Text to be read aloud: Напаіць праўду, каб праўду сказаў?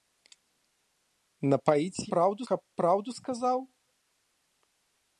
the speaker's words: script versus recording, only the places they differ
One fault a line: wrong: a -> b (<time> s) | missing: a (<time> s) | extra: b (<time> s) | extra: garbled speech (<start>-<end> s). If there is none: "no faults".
no faults